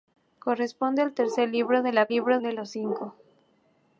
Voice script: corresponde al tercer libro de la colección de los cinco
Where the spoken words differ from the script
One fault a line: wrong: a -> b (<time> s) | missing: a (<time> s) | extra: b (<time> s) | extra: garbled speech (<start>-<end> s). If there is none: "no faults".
wrong: colección -> libro (2.1 s)